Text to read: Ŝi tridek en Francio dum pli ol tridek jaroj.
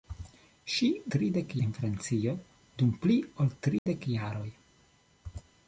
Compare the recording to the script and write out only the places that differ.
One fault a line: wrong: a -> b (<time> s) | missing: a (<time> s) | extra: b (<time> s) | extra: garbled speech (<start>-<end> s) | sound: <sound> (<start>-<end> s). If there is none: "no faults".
sound: dropout (3.8-3.9 s)